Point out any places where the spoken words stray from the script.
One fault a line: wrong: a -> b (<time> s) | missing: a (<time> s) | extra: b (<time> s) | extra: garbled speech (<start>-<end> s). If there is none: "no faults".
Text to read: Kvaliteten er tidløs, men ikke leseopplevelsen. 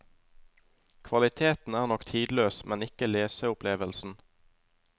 extra: nok (1.9 s)